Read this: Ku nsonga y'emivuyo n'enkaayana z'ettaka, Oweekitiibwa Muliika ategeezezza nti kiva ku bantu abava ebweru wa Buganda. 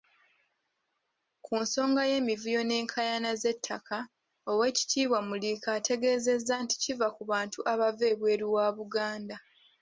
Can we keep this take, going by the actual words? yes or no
yes